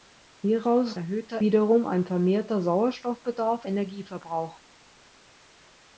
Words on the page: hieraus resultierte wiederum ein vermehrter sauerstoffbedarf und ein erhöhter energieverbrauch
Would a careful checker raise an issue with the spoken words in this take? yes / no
yes